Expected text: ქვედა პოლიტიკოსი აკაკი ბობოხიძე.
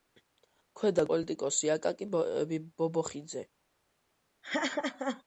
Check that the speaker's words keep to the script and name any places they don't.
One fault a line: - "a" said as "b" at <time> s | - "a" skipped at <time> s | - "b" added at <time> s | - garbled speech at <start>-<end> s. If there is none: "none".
none